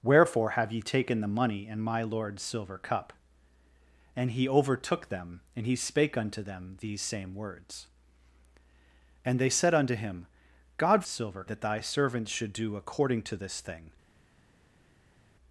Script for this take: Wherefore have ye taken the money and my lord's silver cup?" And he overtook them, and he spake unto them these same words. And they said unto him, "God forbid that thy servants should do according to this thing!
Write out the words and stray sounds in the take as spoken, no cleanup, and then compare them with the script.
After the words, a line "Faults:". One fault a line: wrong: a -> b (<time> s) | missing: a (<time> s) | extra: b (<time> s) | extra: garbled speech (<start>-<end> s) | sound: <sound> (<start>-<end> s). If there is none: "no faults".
Wherefore have ye taken the money and my lord's silver cup?" And he overtook them, and he spake unto them these same words. And they said unto him, "God silver that thy servants should do according to this thing!
Faults:
wrong: forbid -> silver (11.1 s)